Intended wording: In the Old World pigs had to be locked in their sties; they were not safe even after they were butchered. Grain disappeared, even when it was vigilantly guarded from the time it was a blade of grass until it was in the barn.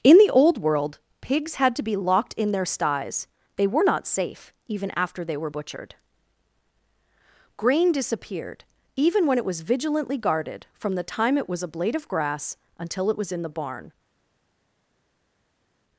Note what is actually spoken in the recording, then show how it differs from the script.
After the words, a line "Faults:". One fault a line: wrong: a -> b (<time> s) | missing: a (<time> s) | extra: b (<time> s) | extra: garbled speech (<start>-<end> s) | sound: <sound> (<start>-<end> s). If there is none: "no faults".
In the Old World pigs had to be locked in their sties; they were not safe even after they were butchered. Grain disappeared, even when it was vigilantly guarded from the time it was a blade of grass until it was in the barn.
Faults:
no faults